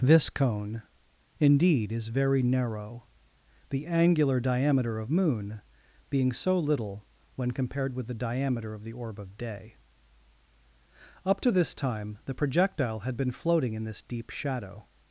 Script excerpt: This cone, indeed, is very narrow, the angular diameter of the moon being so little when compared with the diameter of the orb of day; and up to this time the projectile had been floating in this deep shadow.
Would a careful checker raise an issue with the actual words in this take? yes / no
yes